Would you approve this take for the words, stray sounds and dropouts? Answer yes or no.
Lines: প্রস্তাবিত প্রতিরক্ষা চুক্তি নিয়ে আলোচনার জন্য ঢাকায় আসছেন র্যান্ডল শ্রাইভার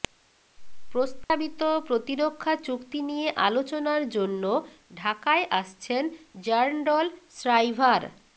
no